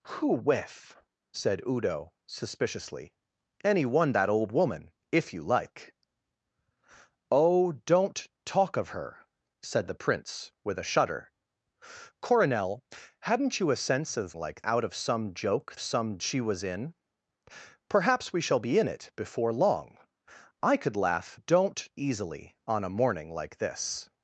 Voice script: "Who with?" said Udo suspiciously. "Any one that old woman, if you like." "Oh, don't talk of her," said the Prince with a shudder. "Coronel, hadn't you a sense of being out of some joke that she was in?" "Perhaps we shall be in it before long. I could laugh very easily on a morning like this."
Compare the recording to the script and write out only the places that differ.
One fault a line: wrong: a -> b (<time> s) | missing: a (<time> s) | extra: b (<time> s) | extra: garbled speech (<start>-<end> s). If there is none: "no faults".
wrong: being -> like (14.4 s)
wrong: that -> some (15.8 s)
wrong: very -> don't (21.3 s)